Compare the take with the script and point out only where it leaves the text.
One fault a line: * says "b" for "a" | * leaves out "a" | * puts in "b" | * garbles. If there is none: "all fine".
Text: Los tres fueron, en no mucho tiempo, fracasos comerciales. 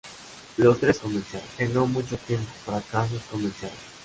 * says "comerciales" for "fueron"